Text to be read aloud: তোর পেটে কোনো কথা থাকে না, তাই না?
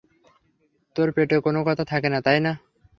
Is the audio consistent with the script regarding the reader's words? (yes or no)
yes